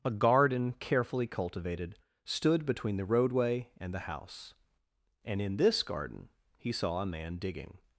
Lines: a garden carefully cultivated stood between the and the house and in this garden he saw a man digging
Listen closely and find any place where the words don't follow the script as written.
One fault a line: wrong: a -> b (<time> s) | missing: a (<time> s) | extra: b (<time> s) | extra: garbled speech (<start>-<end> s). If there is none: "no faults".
extra: roadway (3.0 s)